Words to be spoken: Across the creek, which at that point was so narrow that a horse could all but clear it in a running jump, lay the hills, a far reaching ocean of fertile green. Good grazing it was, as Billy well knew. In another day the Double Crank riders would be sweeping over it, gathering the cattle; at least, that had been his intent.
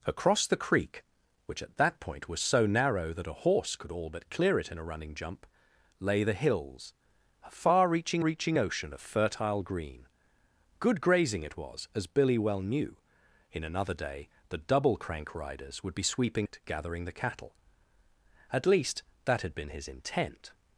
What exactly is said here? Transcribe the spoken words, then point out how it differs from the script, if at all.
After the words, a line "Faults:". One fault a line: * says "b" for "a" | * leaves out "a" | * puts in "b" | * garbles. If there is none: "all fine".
Across the creek, which at that point was so narrow that a horse could all but clear it in a running jump, lay the hills, a far reaching reaching ocean of fertile green. Good grazing it was, as Billy well knew. In another day the Double Crank riders would be sweeping it, gathering the cattle; at least, that had been his intent.
Faults:
* puts in "reaching"
* leaves out "over"